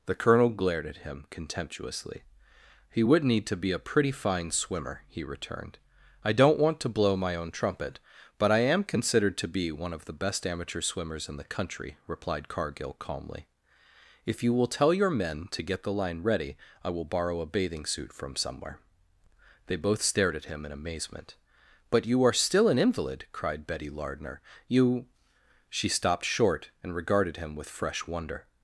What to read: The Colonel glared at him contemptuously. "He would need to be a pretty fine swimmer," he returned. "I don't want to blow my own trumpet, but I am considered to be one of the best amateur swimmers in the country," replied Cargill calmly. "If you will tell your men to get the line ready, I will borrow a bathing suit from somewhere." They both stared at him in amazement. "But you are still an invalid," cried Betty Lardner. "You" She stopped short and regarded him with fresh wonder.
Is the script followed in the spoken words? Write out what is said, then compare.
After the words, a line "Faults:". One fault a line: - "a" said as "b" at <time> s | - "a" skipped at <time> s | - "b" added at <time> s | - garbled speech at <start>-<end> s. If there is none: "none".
The Colonel glared at him contemptuously. "He would need to be a pretty fine swimmer," he returned. "I don't want to blow my own trumpet, but I am considered to be one of the best amateur swimmers in the country," replied Cargill calmly. "If you will tell your men to get the line ready, I will borrow a bathing suit from somewhere." They both stared at him in amazement. "But you are still an invalid," cried Betty Lardner. "You" She stopped short and regarded him with fresh wonder.
Faults:
none